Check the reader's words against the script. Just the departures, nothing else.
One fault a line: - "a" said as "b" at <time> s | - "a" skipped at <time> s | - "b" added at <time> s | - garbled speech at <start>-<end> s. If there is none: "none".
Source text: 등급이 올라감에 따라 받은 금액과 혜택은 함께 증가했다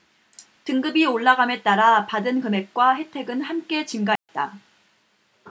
none